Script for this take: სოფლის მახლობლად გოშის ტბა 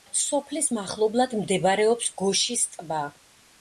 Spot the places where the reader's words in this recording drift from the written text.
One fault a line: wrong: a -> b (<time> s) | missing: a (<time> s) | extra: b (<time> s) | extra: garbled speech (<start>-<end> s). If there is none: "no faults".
extra: მდებარეობს (1.4 s)